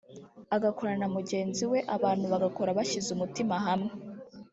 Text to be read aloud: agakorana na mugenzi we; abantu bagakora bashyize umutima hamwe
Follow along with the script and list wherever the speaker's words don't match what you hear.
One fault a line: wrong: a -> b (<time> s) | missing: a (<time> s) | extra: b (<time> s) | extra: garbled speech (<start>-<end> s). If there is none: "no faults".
no faults